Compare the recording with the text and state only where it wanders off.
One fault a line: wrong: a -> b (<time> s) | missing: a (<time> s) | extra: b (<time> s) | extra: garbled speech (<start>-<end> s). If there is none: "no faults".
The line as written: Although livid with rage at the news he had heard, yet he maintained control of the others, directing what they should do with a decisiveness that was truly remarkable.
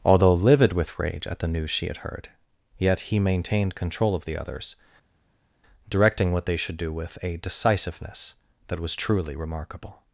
wrong: he -> she (1.7 s)